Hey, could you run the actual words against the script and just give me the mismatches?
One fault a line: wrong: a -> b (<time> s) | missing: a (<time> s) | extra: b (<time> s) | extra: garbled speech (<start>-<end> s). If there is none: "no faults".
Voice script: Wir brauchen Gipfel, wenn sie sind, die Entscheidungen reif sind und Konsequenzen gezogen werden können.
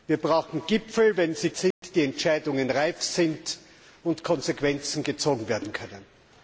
no faults